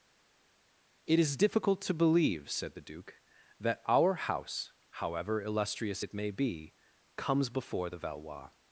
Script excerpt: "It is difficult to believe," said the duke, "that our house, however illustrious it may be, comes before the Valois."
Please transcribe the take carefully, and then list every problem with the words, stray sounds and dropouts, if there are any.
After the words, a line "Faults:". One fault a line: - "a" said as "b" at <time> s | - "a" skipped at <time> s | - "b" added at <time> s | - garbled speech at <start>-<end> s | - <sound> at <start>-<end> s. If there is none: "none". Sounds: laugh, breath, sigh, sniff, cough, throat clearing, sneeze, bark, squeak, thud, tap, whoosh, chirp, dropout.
"It is difficult to believe," said the duke, "that our house, however illustrious it may be, comes before the Valois."
Faults:
none